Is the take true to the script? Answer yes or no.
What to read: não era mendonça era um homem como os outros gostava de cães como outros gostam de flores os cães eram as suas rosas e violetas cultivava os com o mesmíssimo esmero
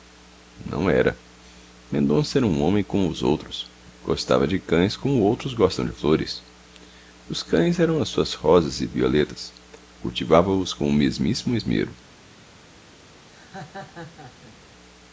yes